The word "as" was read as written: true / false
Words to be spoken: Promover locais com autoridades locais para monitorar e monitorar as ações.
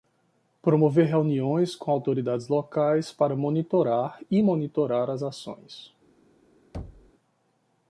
true